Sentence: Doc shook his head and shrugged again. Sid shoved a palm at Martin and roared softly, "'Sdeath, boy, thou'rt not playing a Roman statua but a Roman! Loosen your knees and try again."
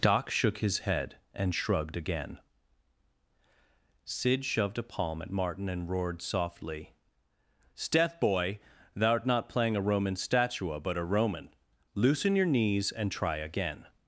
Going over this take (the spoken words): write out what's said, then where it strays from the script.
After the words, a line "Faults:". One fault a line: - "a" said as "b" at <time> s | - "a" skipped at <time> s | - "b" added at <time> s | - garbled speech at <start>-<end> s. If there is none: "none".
Doc shook his head and shrugged again. Sid shoved a palm at Martin and roared softly, "'Sdeath, boy, thou'rt not playing a Roman statua but a Roman! Loosen your knees and try again."
Faults:
none